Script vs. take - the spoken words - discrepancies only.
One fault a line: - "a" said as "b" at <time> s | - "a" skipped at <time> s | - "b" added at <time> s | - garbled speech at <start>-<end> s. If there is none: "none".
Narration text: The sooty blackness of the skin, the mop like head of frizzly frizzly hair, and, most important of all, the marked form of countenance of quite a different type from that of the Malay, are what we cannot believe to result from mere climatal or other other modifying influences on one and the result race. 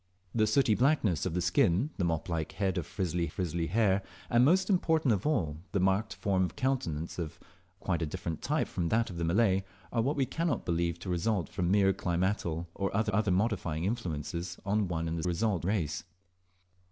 none